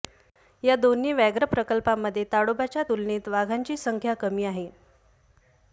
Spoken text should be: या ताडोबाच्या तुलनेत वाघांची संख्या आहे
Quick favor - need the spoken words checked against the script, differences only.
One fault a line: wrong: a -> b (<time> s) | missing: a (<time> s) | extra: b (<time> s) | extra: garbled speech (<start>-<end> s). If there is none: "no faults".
extra: दोन्ही व्याघ्र प्रकल्पांमध्ये (0.8 s)
extra: कमी (4.1 s)